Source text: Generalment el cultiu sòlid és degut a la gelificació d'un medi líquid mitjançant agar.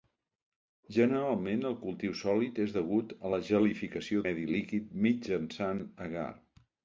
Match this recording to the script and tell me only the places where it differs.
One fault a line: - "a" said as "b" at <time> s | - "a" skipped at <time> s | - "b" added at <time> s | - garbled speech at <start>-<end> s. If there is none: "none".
- "d'un" skipped at 4.2 s